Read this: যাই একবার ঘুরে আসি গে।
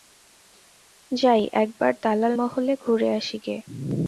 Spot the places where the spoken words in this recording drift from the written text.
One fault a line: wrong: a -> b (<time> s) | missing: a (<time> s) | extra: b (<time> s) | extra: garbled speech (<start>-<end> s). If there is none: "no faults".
extra: দালাল মহলে (2.0 s)